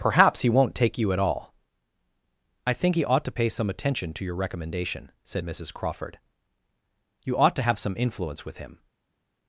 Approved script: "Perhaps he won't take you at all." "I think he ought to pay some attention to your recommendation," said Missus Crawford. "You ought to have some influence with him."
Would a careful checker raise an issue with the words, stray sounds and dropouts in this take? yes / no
no